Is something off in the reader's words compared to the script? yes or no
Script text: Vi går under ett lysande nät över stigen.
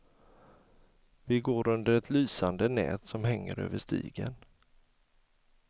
yes